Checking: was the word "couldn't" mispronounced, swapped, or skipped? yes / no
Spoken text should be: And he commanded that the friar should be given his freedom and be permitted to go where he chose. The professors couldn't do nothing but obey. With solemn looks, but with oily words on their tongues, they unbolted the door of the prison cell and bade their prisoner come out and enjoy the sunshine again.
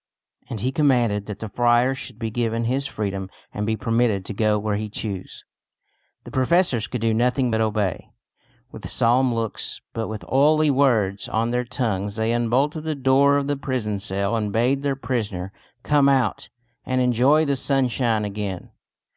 yes